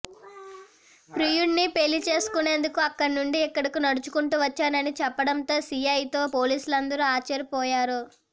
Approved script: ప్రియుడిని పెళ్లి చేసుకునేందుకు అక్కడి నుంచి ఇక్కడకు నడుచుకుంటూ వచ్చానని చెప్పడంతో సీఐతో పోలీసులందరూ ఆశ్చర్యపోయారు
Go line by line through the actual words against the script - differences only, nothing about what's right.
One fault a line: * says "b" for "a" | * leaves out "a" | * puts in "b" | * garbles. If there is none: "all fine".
all fine